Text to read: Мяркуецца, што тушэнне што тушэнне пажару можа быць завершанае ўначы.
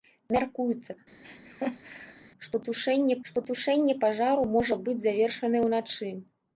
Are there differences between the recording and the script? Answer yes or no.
no